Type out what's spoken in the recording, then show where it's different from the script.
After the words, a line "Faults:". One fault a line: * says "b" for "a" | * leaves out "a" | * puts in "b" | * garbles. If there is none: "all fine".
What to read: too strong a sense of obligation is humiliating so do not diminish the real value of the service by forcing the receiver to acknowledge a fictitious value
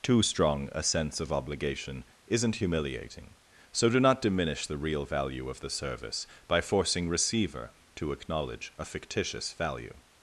too strong a sense of obligation isn't humiliating so do not diminish the real value of the service by forcing receiver to acknowledge a fictitious value
Faults:
* says "isn't" for "is"
* leaves out "the"